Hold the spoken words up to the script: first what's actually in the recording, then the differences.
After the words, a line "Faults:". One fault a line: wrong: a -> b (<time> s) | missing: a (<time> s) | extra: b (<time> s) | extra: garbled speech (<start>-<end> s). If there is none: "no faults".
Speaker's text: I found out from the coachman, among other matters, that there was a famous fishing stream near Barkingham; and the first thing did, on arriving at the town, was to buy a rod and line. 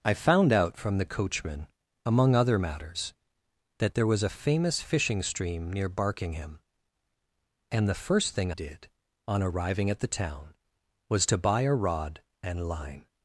I found out from the coachman, among other matters, that there was a famous fishing stream near Barkingham; and the first thing did, on arriving at the town, was to buy a rod and line.
Faults:
no faults